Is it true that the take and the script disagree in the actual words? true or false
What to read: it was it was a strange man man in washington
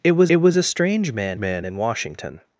false